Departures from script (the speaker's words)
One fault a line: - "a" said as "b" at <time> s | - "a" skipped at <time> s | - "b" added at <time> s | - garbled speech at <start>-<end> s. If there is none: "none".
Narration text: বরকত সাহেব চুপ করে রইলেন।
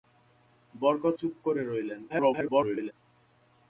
- "সাহেব" skipped at 1.1 s
- garbled speech at 2.1-2.9 s